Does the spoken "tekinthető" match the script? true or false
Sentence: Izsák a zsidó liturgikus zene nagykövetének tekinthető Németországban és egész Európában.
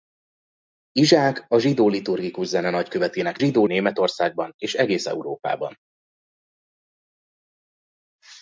false